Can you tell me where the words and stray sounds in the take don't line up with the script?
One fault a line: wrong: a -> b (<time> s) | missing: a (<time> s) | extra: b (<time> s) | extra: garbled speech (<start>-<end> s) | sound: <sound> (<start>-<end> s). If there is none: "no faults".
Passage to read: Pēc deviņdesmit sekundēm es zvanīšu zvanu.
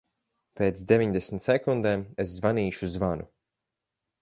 no faults